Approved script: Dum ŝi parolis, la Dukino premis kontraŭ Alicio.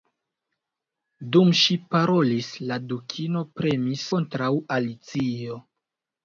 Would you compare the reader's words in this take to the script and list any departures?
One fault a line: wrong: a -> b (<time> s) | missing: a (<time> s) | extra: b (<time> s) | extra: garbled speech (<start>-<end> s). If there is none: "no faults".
no faults